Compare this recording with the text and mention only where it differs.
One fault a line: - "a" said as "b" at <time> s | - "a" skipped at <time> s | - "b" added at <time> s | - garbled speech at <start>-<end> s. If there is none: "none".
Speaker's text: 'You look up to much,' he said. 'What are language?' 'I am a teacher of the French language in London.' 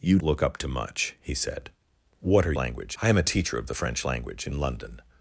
none